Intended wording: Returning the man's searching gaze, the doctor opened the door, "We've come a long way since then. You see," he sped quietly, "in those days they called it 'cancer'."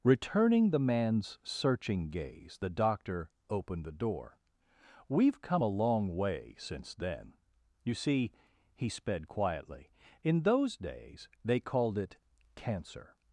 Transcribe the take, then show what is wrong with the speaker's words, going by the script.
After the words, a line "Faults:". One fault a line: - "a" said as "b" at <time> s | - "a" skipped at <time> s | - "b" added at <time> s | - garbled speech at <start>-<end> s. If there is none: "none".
Returning the man's searching gaze, the doctor opened the door, "We've come a long way since then. You see," he sped quietly, "in those days they called it 'cancer'."
Faults:
none